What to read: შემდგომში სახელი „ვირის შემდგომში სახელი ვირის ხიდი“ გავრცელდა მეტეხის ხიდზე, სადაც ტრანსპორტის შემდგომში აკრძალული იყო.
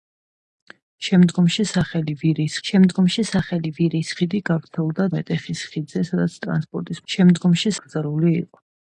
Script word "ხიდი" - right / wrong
right